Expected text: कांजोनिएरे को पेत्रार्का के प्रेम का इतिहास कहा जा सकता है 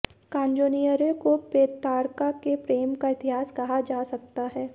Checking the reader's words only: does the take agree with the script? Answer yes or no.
yes